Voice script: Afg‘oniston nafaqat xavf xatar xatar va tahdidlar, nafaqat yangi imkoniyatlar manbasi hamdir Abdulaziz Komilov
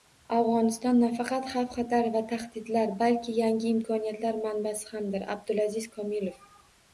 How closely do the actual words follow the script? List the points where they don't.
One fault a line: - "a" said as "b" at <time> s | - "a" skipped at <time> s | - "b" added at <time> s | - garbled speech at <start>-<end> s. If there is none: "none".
- "xatar" skipped at 2.1 s
- "nafaqat" said as "balki" at 3.0 s